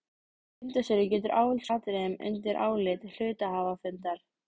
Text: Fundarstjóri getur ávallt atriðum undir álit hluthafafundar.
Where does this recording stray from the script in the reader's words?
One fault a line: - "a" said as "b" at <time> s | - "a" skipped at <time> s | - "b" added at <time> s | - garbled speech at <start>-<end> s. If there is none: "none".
none